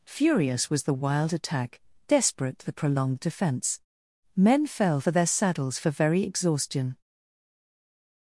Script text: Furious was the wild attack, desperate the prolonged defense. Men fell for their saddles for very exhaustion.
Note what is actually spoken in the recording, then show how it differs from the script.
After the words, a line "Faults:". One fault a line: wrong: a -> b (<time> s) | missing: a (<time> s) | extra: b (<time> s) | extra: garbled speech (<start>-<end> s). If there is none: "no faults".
Furious was the wild attack, desperate the prolonged defense. Men fell for their saddles for very exhaustion.
Faults:
no faults